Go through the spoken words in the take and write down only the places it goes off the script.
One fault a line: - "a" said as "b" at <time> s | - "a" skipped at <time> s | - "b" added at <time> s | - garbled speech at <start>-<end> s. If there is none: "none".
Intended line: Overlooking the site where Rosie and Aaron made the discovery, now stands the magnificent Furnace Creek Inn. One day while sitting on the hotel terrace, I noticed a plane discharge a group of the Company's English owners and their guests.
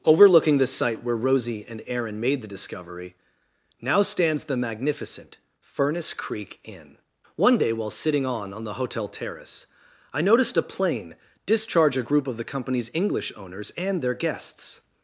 - "on" added at 8.5 s